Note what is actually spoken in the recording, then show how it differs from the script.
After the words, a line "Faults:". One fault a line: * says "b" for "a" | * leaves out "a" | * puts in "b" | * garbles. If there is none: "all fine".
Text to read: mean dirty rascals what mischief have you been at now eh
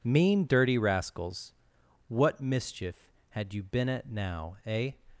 mean dirty rascals what mischief had you been at now eh
Faults:
* says "had" for "have"